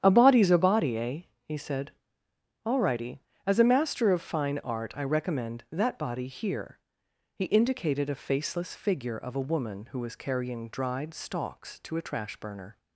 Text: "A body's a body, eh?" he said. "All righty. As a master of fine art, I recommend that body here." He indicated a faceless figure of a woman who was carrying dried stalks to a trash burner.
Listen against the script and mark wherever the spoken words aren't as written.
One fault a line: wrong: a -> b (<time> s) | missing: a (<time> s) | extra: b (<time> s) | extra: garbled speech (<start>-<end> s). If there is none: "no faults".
no faults